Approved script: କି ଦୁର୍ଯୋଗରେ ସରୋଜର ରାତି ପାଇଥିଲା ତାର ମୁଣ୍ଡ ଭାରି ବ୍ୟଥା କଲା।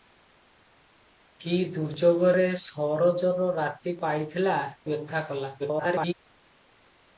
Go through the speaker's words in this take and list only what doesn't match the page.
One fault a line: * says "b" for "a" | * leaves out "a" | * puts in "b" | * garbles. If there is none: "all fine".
* leaves out "ତାର ମୁଣ୍ଡ ଭାରି"
* garbles